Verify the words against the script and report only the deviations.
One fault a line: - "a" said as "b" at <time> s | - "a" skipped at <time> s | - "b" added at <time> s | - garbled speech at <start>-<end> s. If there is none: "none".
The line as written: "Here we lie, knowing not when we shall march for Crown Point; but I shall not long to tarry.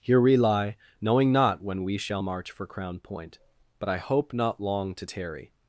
- "shall" said as "hope" at 4.0 s